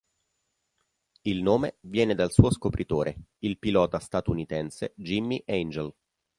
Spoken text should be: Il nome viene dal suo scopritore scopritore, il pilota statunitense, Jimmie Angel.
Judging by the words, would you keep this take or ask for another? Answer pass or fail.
fail